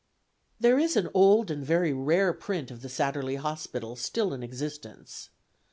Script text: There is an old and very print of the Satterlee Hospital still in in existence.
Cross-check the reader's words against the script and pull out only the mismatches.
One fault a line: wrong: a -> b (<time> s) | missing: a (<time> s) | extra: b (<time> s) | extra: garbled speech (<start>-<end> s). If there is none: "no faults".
extra: rare (1.9 s)
missing: in (4.4 s)